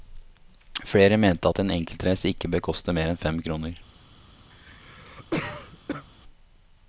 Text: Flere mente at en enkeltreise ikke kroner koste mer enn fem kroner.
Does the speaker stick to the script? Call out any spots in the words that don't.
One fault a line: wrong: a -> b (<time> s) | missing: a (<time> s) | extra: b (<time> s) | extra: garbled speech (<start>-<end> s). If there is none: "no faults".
wrong: kroner -> bør (2.5 s)